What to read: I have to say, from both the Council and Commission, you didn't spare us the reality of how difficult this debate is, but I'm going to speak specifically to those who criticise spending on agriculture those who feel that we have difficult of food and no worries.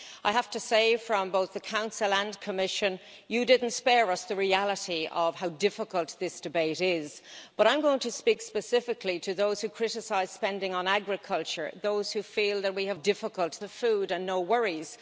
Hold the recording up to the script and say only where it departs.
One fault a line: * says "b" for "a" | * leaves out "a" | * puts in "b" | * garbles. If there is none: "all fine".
all fine